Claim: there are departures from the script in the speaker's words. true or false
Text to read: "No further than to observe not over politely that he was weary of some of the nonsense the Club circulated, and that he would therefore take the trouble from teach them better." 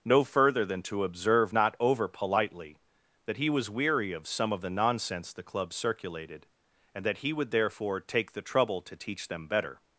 true